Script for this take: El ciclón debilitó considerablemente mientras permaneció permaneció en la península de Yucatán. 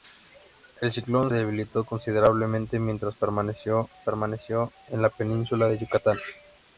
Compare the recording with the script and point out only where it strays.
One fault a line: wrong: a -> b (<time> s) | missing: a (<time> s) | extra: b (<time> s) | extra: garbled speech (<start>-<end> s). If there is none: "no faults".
no faults